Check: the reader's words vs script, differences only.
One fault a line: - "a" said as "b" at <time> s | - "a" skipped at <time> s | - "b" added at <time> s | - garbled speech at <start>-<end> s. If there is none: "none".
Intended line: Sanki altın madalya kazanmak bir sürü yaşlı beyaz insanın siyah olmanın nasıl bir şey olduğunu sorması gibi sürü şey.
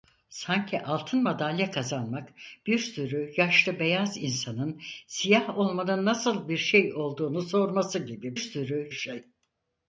none